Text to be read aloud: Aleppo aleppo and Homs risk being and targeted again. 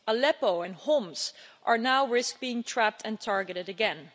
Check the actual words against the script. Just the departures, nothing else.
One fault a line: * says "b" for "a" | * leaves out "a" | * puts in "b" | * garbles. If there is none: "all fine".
* leaves out "aleppo"
* puts in "now"
* puts in "trapped"